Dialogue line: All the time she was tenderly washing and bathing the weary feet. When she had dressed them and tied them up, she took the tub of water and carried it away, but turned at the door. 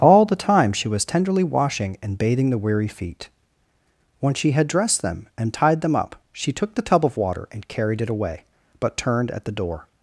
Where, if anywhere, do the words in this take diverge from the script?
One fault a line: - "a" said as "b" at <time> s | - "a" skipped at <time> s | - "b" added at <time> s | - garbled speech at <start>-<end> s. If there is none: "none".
none